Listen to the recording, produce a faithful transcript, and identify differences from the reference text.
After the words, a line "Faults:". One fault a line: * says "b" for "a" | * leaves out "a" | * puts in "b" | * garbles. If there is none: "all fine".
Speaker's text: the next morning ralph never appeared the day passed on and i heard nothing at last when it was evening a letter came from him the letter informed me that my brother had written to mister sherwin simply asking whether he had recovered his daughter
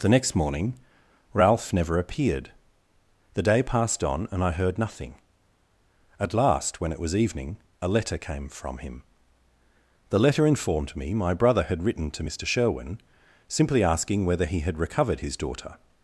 the next morning ralph never appeared the day passed on and i heard nothing at last when it was evening a letter came from him the letter informed me my brother had written to mister sherwin simply asking whether he had recovered his daughter
Faults:
* leaves out "that"